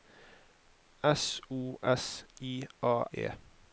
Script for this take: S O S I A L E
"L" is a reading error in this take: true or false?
true